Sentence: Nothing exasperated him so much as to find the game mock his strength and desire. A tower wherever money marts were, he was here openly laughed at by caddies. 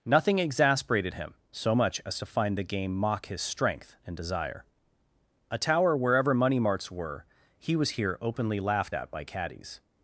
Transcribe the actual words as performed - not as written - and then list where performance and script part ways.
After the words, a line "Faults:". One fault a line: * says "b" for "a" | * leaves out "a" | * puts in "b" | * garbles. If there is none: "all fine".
Nothing exasperated him so much as to find the game mock his strength and desire. A tower wherever money marts were, he was here openly laughed at by caddies.
Faults:
all fine